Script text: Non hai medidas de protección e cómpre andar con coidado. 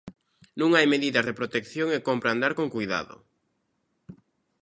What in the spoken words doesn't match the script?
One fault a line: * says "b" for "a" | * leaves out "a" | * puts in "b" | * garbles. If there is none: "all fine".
all fine